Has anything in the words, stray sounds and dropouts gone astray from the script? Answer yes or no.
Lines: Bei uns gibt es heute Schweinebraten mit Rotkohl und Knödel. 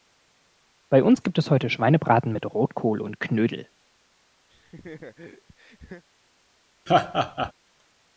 yes